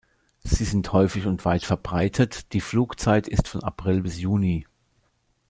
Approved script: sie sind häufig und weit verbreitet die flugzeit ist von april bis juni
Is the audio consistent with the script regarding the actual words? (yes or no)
yes